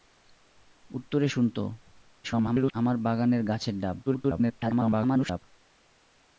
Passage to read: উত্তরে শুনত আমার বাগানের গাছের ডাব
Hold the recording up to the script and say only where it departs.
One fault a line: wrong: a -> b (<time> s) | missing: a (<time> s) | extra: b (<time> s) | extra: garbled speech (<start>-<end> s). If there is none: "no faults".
extra: garbled speech (2.2-2.7 s)
extra: garbled speech (4.1-5.4 s)